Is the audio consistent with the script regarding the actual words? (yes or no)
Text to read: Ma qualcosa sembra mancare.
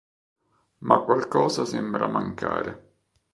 yes